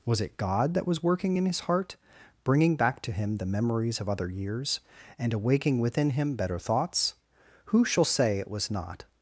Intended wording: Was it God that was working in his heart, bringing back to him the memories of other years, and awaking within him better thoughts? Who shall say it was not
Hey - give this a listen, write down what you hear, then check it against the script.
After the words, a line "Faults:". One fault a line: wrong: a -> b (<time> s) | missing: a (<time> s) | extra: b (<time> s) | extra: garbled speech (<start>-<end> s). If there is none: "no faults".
Was it God that was working in his heart, bringing back to him the memories of other years, and awaking within him better thoughts? Who shall say it was not
Faults:
no faults